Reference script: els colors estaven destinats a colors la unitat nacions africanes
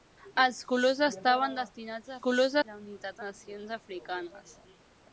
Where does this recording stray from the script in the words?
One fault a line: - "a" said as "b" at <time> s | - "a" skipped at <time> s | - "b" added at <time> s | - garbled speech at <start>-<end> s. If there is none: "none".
none